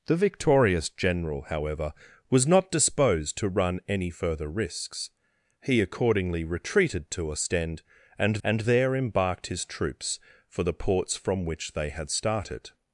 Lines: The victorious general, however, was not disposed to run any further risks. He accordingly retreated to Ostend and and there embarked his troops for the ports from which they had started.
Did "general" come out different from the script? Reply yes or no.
no